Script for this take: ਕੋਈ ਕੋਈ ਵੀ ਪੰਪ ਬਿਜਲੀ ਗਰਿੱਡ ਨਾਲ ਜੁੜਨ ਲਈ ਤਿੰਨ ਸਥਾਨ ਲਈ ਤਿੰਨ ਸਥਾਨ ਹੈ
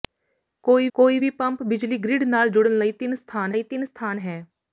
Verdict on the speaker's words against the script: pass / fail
pass